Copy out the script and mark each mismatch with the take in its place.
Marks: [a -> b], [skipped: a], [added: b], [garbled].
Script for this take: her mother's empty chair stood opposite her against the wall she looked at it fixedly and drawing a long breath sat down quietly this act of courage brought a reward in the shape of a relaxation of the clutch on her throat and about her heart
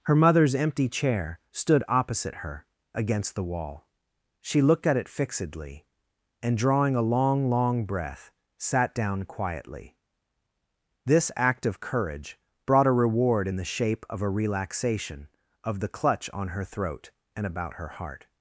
her mother's empty chair stood opposite her against the wall she looked at it fixedly and drawing a long [added: long] breath sat down quietly this act of courage brought a reward in the shape of a relaxation of the clutch on her throat and about her heart